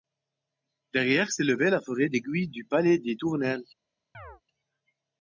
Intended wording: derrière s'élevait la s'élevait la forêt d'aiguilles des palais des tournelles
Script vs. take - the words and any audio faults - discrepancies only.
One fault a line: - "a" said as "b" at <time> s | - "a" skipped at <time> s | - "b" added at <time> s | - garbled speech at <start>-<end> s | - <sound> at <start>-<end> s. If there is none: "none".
- "s'élevait la" skipped at 1.8 s
- "des" said as "du" at 2.5 s
- chirp at 4.1-4.4 s